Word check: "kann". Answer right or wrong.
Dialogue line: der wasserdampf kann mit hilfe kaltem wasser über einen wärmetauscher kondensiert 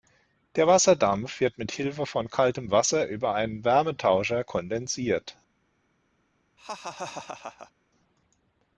wrong